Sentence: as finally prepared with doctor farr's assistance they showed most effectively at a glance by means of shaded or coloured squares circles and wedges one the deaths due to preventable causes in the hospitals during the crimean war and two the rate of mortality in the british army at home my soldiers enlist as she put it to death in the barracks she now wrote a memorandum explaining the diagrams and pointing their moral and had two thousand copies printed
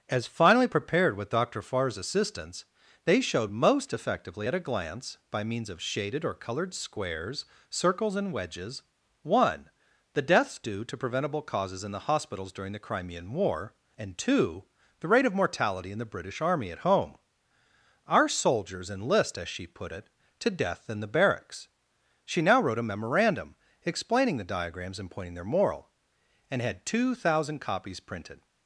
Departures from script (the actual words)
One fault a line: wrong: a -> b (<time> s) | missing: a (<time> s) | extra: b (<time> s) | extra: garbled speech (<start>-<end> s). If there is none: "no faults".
wrong: my -> our (18.1 s)